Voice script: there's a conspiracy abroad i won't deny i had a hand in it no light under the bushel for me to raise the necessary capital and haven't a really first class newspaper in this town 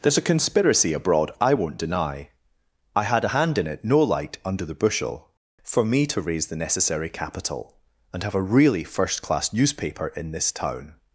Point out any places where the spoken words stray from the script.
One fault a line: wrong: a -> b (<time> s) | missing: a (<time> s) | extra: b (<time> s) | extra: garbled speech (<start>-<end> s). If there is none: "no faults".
wrong: haven't -> have (8.2 s)